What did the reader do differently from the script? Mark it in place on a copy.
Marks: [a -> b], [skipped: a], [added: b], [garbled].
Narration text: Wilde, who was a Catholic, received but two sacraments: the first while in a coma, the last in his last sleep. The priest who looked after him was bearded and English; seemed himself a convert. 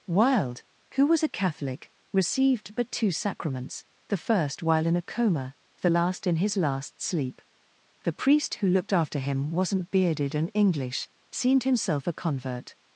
Wilde, who was a Catholic, received but two sacraments: the first while in a coma, the last in his last sleep. The priest who looked after him [was -> wasn't] bearded and English; seemed himself a convert.